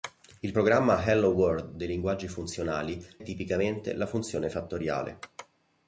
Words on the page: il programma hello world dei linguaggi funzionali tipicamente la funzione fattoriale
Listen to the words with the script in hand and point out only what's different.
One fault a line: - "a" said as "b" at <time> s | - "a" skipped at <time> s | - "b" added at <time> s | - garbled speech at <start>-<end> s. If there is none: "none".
none